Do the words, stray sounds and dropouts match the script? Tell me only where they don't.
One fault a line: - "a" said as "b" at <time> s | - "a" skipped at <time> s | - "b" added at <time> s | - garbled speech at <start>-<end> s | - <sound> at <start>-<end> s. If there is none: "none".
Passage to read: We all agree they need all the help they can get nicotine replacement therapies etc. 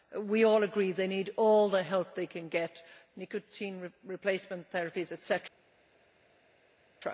none